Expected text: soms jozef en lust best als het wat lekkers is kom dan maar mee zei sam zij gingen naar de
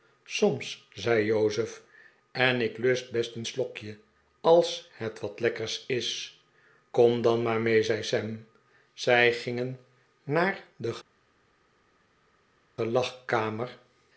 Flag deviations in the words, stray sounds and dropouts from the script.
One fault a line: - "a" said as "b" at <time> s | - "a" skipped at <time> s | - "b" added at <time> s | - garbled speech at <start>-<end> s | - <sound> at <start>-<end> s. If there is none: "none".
- "zei" added at 0.9 s
- "ik" added at 2.6 s
- "een slokje" added at 3.4 s